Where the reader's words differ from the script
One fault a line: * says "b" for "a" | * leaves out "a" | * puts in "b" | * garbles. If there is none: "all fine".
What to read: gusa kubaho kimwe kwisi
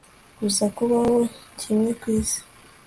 all fine